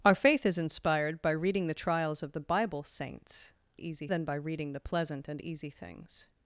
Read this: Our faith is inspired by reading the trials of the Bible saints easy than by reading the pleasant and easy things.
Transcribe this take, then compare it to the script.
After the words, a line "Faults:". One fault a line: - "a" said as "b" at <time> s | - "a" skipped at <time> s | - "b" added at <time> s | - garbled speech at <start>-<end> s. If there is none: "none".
Our faith is inspired by reading the trials of the Bible saints easy than by reading the pleasant and easy things.
Faults:
none